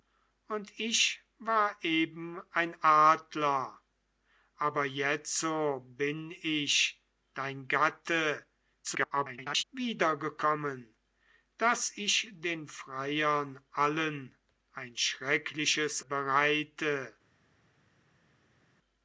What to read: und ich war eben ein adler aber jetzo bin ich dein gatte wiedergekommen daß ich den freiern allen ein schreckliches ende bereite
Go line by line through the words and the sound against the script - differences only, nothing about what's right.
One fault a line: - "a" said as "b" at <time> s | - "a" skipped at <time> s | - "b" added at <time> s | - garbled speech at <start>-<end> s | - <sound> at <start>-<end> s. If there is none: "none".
- garbled speech at 8.8-9.6 s
- "ende" skipped at 16.0 s